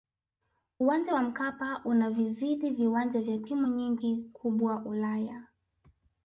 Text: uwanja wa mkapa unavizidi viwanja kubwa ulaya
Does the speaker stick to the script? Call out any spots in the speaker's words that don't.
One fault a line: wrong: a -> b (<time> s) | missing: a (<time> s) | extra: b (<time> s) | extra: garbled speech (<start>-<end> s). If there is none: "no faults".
extra: vya timu nyingi (3.2 s)